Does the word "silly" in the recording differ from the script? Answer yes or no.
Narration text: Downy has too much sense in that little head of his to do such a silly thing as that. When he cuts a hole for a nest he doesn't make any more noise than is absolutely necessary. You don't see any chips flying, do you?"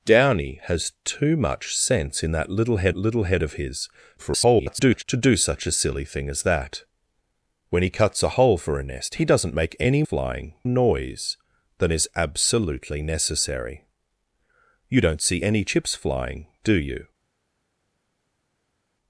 no